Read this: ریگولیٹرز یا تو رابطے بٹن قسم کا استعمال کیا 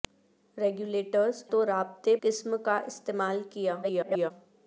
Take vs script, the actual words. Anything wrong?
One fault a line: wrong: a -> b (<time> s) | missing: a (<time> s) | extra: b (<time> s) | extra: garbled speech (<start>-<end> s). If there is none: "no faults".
missing: یا (1.4 s)
missing: بٹن (2.1 s)
extra: garbled speech (3.8-4.3 s)